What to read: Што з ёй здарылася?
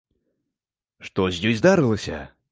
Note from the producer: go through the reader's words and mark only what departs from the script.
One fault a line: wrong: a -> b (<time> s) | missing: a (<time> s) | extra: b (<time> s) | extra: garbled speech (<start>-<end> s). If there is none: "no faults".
no faults